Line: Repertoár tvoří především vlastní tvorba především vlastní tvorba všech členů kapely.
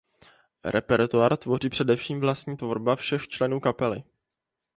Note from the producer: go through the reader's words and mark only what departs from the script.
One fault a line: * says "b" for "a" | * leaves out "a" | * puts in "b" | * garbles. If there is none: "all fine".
* leaves out "především vlastní tvorba"